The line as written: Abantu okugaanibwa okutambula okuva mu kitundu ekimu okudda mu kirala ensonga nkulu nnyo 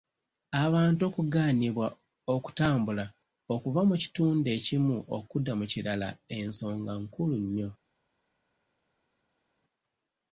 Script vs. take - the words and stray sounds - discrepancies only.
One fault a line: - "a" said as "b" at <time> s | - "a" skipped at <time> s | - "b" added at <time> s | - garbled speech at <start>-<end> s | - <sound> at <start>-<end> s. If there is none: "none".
none